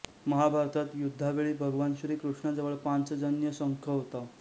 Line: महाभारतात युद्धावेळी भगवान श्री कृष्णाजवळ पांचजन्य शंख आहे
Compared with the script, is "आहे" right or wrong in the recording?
wrong